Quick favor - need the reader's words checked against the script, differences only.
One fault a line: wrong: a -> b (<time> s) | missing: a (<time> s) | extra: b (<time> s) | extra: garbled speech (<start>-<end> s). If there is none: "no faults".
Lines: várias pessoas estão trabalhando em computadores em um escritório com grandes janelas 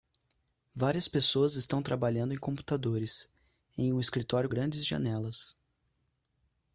missing: com (4.5 s)